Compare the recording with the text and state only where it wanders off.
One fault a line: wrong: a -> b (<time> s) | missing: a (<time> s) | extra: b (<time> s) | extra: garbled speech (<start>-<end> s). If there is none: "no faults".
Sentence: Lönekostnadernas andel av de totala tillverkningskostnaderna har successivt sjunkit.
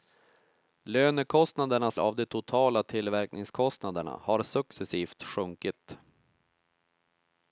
missing: andel (2.0 s)